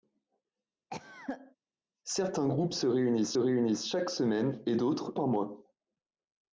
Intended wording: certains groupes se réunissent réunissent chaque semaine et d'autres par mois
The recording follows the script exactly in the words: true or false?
true